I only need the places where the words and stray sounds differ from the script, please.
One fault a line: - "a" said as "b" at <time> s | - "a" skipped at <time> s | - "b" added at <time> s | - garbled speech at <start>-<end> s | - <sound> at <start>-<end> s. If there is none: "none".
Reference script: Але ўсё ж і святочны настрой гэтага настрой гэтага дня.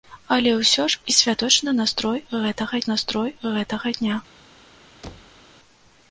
- thud at 5.0-5.4 s